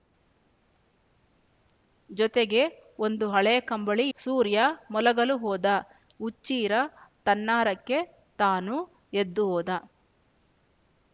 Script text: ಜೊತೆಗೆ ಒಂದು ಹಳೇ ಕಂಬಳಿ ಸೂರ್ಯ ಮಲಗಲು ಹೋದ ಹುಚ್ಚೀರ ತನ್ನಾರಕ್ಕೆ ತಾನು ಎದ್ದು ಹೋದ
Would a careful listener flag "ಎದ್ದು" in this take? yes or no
no